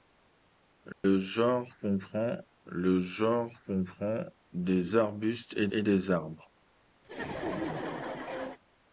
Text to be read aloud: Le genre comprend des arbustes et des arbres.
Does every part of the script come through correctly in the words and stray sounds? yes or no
no